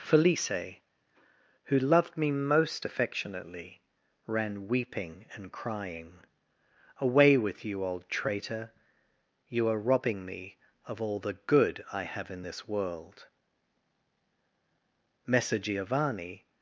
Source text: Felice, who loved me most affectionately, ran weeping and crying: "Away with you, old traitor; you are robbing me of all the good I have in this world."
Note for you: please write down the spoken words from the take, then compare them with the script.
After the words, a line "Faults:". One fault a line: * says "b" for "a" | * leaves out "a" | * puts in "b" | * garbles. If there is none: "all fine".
Felice, who loved me most affectionately, ran weeping and crying: "Away with you, old traitor; you are robbing me of all the good I have in this world." Messer Giovanni
Faults:
* puts in "Messer Giovanni"